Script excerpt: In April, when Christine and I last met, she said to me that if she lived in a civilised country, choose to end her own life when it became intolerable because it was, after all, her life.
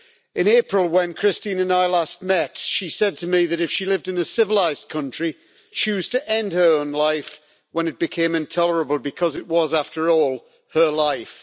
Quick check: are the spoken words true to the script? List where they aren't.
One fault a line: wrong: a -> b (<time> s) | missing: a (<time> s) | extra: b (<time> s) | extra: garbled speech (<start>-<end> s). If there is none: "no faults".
no faults